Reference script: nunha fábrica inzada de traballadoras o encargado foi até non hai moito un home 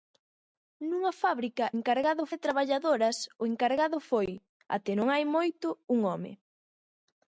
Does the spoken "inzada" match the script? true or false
false